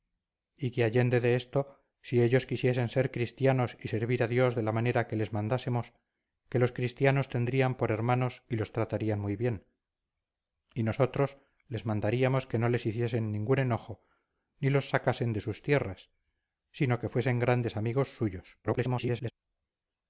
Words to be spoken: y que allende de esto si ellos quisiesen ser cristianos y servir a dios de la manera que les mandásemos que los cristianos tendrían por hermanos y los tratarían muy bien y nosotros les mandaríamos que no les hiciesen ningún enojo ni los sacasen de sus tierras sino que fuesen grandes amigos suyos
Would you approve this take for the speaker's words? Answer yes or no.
no